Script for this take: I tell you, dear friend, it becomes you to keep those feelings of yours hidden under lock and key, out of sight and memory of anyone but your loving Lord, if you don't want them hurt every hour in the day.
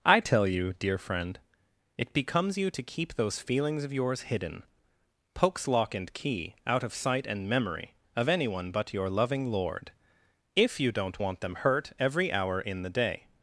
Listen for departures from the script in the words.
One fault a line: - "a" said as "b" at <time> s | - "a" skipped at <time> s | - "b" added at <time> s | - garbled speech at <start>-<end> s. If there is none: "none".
- "under" said as "pokes" at 5.3 s